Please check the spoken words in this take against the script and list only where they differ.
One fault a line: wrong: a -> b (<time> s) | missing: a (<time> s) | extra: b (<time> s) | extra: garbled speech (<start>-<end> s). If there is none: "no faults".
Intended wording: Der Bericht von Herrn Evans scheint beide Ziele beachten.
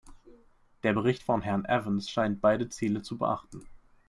extra: zu (3.0 s)